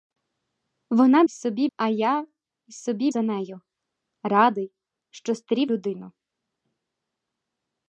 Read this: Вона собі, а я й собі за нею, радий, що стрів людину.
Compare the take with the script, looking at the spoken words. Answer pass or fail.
pass